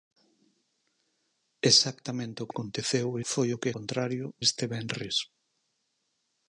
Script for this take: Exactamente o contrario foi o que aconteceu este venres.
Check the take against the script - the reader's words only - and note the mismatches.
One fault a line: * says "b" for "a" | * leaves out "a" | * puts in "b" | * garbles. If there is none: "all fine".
* says "aconteceu" for "contrario"
* says "contrario" for "aconteceu"